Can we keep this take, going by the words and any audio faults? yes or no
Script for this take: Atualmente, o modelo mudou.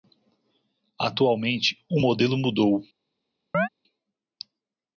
no